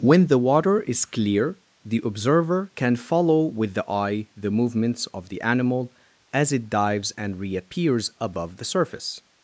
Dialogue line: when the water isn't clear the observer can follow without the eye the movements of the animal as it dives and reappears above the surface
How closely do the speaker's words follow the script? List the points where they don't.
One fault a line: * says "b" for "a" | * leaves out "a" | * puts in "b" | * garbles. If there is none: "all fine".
* says "is" for "isn't"
* says "with" for "without"